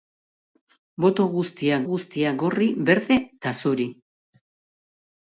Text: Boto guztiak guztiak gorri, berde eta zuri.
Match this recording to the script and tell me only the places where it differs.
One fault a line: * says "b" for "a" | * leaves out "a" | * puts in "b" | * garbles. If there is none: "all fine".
all fine